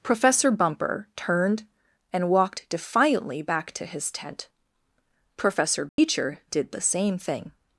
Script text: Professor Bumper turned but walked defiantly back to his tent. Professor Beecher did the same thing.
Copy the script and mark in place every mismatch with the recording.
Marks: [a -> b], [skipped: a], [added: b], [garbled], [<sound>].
Professor Bumper turned [but -> and] walked defiantly back to his tent. Professor Beecher [dropout] did the same thing.